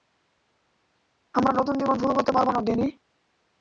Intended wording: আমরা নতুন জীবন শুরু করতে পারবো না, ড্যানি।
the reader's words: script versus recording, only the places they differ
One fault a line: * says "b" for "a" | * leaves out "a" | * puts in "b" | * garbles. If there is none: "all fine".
all fine